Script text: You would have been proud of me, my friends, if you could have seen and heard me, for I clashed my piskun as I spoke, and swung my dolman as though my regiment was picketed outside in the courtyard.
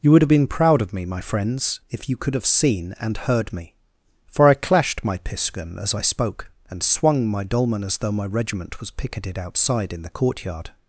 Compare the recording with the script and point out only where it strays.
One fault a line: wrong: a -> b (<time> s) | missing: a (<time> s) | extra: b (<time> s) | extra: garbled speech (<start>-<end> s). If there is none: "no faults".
no faults